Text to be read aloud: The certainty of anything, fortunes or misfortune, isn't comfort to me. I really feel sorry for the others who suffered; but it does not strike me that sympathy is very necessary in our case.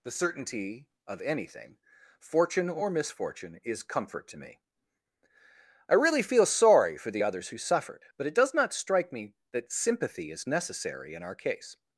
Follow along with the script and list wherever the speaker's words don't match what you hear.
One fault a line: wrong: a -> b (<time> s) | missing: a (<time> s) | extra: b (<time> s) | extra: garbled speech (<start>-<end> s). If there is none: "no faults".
wrong: fortunes -> fortune (2.2 s)
wrong: isn't -> is (3.6 s)
missing: very (10.5 s)